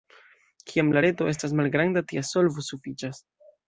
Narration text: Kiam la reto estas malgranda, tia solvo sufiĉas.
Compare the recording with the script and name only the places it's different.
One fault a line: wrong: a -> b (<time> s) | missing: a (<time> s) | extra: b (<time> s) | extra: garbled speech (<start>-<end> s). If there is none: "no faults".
no faults